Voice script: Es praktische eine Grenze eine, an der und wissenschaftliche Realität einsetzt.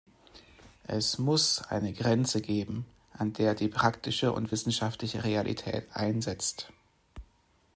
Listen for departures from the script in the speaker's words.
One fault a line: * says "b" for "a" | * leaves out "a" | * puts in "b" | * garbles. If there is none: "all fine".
* says "muss" for "praktische"
* says "geben" for "eine"
* puts in "die praktische"